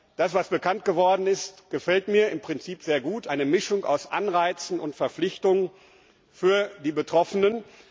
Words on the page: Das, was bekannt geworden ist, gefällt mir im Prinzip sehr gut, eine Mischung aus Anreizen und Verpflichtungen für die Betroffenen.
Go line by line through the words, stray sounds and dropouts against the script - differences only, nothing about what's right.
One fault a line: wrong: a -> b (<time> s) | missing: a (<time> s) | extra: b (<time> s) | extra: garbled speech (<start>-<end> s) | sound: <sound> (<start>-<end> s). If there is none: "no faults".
no faults